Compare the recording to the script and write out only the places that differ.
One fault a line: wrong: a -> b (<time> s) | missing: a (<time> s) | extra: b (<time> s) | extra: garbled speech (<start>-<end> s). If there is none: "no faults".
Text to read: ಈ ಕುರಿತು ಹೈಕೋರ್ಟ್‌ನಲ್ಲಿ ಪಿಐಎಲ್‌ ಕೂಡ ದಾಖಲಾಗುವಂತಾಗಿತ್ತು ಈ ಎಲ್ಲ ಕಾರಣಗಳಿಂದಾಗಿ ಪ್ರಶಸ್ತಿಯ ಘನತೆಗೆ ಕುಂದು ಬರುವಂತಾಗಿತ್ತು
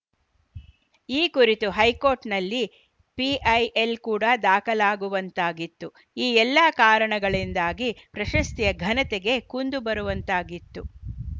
no faults